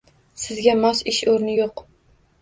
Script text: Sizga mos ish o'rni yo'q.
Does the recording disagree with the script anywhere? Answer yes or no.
no